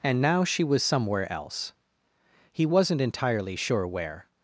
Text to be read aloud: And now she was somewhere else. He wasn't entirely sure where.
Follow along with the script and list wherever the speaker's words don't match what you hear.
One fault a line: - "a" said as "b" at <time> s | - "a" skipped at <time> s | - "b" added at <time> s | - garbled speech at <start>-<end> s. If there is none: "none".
none